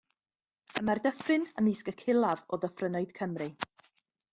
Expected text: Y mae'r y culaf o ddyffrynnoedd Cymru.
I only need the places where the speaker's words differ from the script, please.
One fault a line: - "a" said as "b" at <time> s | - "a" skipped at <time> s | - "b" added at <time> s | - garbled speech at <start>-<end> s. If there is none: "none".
- "dyffryn ymysg" added at 1.1 s